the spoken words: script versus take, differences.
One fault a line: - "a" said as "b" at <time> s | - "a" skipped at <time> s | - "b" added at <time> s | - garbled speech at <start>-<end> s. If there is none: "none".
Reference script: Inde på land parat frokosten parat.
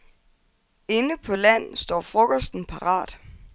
- "parat" said as "står" at 1.8 s